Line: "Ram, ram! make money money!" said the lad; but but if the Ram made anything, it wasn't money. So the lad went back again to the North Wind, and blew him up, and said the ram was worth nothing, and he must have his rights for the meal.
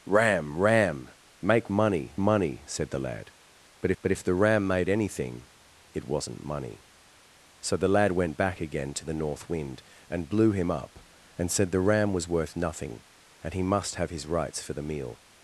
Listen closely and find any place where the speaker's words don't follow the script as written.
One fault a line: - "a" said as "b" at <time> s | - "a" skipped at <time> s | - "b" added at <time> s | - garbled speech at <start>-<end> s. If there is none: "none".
none